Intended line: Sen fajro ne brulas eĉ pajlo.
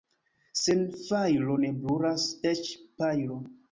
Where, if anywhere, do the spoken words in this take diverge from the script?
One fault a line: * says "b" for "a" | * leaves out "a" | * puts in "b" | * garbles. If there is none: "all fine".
all fine